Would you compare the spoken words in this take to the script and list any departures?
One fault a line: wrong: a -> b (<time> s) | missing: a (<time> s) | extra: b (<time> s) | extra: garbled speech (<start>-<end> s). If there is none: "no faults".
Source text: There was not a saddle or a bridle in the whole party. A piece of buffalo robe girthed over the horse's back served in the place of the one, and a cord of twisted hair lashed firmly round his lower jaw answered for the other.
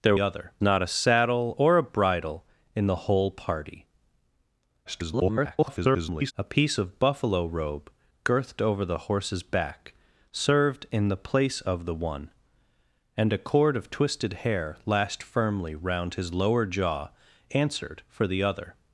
wrong: was -> other (0.2 s)
extra: garbled speech (4.9-6.3 s)